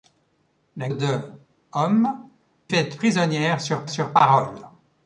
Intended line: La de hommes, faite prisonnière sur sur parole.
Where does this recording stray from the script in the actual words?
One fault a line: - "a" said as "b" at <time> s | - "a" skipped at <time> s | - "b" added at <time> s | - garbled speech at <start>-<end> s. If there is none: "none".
none